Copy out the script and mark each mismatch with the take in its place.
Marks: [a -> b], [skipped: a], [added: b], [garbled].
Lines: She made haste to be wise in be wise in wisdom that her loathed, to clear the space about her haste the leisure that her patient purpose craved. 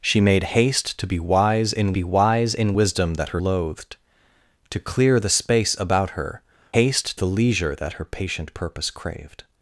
She made haste to be wise in be wise in wisdom that her loathed, to clear the space about her haste the leisure that her patient purpose craved.